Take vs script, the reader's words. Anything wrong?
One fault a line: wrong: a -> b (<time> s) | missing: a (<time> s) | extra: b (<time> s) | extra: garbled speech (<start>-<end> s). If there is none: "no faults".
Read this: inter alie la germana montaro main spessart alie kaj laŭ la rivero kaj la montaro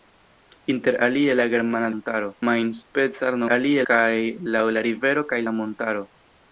no faults